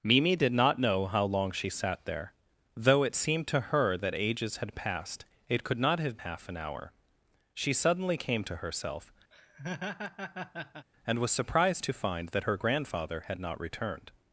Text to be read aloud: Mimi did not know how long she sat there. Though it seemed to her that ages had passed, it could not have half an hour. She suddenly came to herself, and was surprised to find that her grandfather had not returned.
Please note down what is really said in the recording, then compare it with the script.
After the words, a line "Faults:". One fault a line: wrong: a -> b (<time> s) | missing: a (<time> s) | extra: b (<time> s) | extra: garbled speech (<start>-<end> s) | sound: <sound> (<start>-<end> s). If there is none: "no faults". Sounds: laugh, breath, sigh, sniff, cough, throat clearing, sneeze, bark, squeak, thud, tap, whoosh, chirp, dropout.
Mimi did not know how long she sat there. Though it seemed to her that ages had passed, it could not have half an hour. She suddenly came to herself, and was surprised to find that her grandfather had not returned.
Faults:
sound: laugh (9.3-10.9 s)